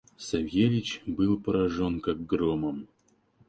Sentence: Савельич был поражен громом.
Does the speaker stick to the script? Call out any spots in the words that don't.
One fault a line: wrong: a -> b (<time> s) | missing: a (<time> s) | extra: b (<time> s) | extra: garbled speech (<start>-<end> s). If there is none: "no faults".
extra: как (2.0 s)